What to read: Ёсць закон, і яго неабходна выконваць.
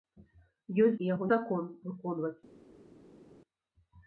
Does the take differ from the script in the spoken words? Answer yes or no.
yes